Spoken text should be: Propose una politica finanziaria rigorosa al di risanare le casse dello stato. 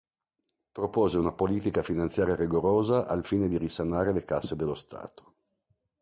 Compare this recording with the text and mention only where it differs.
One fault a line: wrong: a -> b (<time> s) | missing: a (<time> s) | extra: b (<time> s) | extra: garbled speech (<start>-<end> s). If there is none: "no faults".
extra: fine (3.2 s)